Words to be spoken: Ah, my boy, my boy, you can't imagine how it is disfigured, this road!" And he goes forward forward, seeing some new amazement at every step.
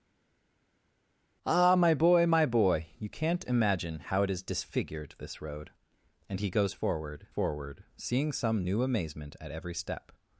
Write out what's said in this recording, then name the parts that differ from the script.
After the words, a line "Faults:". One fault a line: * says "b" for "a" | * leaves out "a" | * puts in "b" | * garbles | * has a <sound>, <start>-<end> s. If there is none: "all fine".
Ah, my boy, my boy, you can't imagine how it is disfigured, this road!" And he goes forward forward, seeing some new amazement at every step.
Faults:
all fine